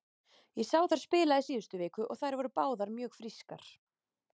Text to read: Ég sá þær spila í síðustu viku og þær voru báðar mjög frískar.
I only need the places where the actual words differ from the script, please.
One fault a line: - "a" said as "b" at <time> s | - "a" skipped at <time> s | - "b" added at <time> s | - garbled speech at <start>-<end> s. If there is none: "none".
none